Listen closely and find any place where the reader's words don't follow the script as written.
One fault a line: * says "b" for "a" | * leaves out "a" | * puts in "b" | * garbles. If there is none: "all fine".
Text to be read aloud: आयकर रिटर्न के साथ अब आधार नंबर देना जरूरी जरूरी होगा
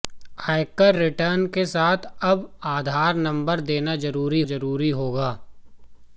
all fine